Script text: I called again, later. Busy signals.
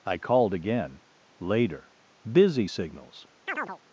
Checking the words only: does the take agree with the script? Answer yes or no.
yes